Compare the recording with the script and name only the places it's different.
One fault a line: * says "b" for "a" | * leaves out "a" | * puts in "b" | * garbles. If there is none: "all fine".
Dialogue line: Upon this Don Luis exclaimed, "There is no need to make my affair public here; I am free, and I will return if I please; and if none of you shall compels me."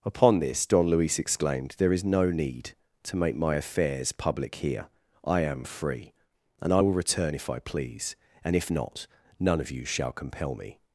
* says "affairs" for "affair"
* puts in "not"
* says "compel" for "compels"